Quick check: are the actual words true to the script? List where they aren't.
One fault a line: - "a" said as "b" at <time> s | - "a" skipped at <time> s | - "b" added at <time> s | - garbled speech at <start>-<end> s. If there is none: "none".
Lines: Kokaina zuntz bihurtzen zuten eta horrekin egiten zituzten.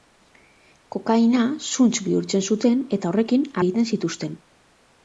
none